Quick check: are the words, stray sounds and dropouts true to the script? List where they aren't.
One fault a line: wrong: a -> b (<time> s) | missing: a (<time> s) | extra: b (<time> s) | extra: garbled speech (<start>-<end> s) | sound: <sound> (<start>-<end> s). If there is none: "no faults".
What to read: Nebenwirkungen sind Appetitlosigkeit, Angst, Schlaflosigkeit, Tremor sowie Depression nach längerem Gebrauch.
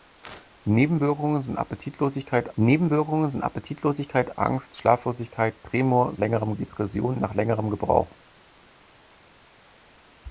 extra: nebenwirkungen sind Appetitlosigkeit (2.6 s)
wrong: sowie -> längerem (6.2 s)